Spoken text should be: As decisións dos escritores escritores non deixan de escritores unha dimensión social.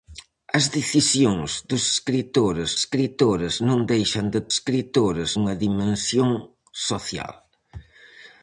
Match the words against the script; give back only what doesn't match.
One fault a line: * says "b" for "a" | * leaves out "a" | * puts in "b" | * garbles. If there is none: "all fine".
all fine